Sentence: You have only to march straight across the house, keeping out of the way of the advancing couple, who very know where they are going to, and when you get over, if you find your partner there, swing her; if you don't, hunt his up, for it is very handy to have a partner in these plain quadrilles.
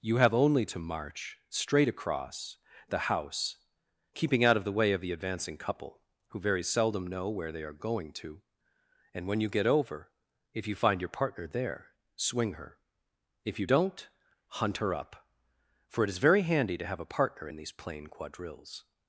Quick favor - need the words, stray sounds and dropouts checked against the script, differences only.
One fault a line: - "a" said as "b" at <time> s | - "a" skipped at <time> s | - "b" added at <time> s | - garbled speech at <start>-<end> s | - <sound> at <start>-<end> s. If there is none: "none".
- "seldom" added at 6.6 s
- "his" said as "her" at 14.8 s